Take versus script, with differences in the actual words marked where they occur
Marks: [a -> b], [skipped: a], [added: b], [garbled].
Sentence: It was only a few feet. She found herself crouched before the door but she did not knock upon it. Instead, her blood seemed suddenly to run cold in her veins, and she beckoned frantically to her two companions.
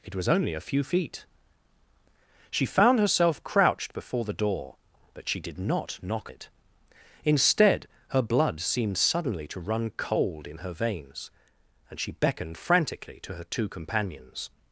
It was only a few feet. She found herself crouched before the door but she did not knock [skipped: upon] it. Instead, her blood seemed suddenly to run cold in her veins, and she beckoned frantically to her two companions.